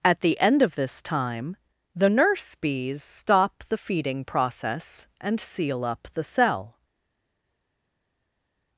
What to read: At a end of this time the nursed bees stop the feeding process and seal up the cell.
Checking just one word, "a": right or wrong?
wrong